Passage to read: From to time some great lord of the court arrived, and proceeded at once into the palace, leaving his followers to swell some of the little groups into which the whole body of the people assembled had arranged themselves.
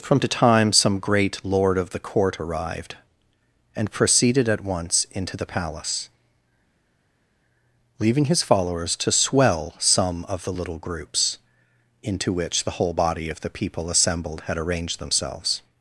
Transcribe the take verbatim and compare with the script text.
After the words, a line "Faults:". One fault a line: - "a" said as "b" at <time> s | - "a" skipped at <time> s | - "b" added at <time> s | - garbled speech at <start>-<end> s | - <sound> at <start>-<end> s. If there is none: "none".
From to time some great lord of the court arrived, and proceeded at once into the palace, leaving his followers to swell some of the little groups into which the whole body of the people assembled had arranged themselves.
Faults:
none